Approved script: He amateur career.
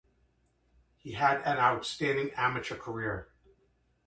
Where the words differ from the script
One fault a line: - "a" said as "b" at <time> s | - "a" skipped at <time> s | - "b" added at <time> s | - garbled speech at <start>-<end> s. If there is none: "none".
- "had an outstanding" added at 1.1 s